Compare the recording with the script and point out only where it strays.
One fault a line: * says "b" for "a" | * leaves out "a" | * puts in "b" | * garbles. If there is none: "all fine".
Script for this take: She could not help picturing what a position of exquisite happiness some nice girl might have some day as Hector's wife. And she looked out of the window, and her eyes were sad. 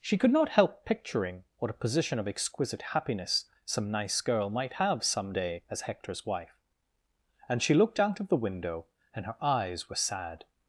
all fine